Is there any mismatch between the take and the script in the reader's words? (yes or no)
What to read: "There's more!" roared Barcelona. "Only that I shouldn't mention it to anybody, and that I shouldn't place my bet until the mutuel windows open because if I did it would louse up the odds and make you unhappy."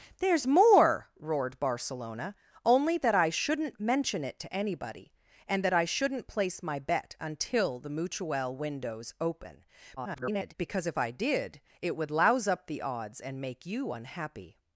yes